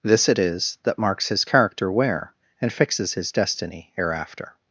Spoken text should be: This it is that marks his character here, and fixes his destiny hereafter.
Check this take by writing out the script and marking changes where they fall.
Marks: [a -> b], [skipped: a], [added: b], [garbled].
This it is that marks his character [here, -> where] and fixes his destiny hereafter.